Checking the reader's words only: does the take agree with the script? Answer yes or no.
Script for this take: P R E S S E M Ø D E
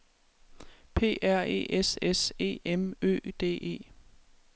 yes